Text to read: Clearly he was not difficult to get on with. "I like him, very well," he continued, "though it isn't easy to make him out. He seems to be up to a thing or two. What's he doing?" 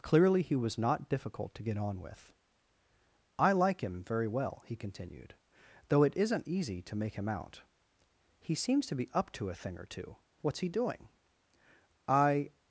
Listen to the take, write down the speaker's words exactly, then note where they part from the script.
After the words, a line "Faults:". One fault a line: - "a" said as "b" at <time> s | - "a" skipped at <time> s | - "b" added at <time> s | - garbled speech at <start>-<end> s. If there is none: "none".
Clearly he was not difficult to get on with. "I like him, very well," he continued, "though it isn't easy to make him out. He seems to be up to a thing or two. What's he doing?" I
Faults:
- "I" added at 12.1 s